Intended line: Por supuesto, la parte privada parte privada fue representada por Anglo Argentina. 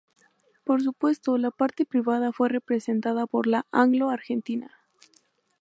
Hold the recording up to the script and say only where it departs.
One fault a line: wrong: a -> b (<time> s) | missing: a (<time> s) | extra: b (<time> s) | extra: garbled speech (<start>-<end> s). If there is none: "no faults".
missing: parte privada (2.3 s)
extra: la (3.5 s)